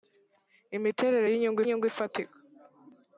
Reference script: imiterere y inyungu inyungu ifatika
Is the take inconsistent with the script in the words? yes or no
no